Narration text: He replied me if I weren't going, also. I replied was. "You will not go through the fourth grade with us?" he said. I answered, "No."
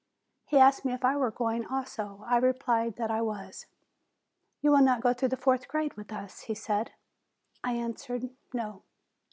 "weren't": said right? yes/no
no